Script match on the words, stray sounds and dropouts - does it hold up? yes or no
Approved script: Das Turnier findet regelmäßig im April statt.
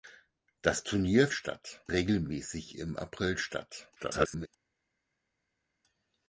no